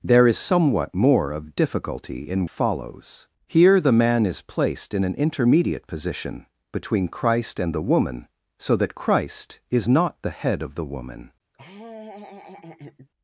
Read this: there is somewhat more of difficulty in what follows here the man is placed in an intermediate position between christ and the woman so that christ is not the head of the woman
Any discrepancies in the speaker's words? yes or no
yes